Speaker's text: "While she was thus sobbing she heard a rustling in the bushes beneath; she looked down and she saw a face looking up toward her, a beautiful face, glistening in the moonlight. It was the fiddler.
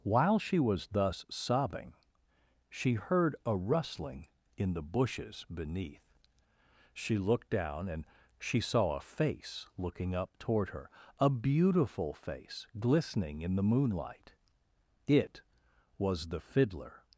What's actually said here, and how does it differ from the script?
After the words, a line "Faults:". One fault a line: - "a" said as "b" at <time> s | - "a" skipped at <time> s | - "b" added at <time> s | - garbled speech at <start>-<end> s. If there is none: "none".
"While she was thus sobbing she heard a rustling in the bushes beneath; she looked down and she saw a face looking up toward her, a beautiful face, glistening in the moonlight. It was the fiddler.
Faults:
none